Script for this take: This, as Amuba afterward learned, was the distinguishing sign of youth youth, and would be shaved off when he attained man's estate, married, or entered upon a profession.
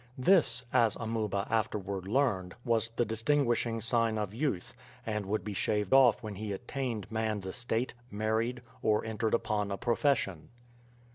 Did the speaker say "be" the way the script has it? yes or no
yes